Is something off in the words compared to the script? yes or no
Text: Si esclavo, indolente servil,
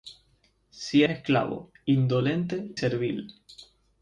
no